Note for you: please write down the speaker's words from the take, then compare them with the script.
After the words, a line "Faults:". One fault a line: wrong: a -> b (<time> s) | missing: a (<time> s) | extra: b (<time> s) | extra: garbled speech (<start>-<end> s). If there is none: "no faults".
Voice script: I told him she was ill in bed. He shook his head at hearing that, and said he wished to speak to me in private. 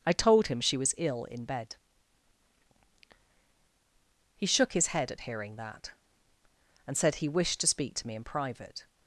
I told him she was ill in bed. He shook his head at hearing that, and said he wished to speak to me in private.
Faults:
no faults